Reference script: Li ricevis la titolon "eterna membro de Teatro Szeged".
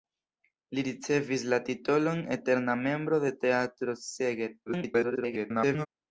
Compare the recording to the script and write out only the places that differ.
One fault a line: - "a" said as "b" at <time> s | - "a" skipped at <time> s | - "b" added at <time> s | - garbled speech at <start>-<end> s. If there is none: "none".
- garbled speech at 4.7-5.9 s